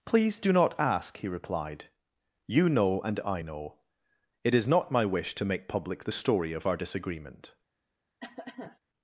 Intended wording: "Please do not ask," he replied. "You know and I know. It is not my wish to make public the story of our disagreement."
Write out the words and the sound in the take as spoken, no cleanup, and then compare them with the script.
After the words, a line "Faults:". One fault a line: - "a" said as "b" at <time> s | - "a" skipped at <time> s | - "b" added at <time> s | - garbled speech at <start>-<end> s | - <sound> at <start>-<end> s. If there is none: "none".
"Please do not ask," he replied. "You know and I know. It is not my wish to make public the story of our disagreement."
Faults:
- cough at 8.2-8.8 s